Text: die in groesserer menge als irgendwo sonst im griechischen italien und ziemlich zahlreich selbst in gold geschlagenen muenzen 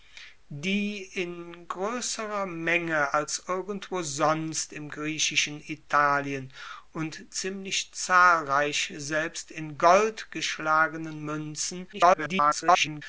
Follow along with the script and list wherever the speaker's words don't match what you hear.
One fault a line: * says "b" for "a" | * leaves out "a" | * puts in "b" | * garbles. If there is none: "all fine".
* garbles